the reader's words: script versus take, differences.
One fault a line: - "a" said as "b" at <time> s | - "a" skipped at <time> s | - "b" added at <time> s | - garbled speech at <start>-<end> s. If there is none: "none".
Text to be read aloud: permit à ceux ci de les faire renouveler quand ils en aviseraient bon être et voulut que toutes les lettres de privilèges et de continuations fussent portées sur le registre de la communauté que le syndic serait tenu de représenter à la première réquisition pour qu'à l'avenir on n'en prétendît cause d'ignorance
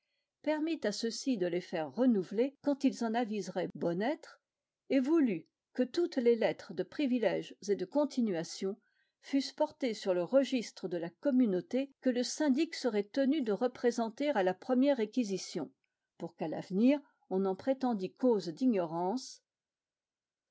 none